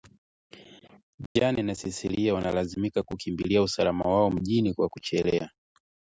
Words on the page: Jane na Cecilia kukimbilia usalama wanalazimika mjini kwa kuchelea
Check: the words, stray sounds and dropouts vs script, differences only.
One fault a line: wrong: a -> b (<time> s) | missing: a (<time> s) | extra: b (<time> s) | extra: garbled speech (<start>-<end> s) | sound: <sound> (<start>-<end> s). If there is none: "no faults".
sound: dropout (1.3-1.4 s)
extra: wanalazimika (2.3 s)
wrong: wanalazimika -> wao (4.0 s)